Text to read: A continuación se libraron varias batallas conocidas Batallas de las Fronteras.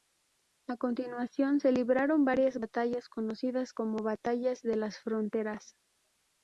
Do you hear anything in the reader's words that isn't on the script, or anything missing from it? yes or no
yes